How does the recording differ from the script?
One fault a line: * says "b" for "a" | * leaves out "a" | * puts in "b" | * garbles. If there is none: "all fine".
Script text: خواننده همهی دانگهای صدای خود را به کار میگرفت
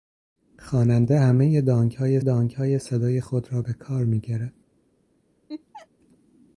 * puts in "دانگهای"